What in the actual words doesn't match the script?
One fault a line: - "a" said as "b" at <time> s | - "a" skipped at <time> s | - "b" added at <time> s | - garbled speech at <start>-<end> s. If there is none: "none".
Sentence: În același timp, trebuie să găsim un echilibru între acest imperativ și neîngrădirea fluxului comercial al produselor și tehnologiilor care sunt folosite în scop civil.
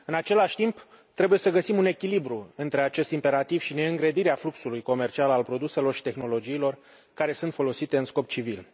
none